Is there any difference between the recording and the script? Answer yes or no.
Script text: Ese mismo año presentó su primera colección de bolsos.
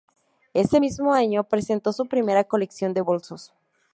no